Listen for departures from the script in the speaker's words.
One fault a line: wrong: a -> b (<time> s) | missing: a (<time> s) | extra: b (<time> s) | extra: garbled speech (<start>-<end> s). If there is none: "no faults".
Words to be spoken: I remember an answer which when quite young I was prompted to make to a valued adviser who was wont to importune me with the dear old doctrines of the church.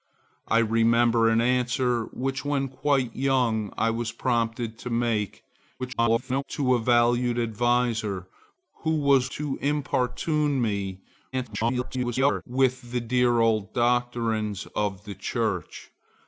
extra: garbled speech (5.8-6.4 s)
missing: wont (9.3 s)
extra: garbled speech (11.3-12.4 s)